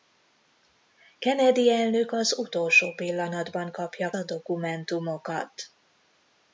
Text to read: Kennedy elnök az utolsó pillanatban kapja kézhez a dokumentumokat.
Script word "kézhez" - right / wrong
wrong